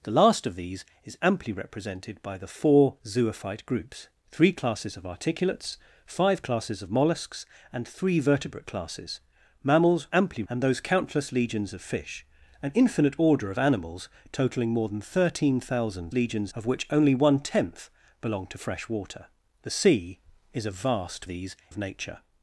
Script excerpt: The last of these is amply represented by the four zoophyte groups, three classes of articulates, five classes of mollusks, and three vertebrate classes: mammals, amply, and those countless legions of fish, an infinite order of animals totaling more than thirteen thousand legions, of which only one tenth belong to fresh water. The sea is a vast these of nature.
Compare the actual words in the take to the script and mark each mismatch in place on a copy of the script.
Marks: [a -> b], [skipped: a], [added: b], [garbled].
The last of these is amply represented by the four zoophyte groups, three classes of articulates, five classes of mollusks, and three vertebrate classes: mammals, amply, and those countless legions of fish, an infinite order of animals totaling more than thirteen thousand legions, of which only one tenth belong to fresh water. The sea is a vast these of nature.